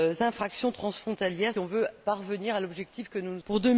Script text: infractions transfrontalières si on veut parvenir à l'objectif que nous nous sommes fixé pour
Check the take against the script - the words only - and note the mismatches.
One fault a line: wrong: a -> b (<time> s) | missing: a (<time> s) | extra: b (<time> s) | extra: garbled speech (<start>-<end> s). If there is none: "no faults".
missing: si (1.5 s)
missing: sommes fixé (3.4 s)